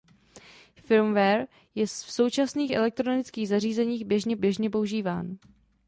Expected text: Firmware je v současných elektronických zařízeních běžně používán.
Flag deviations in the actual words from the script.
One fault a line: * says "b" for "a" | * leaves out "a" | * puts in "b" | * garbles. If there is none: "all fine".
* puts in "běžně"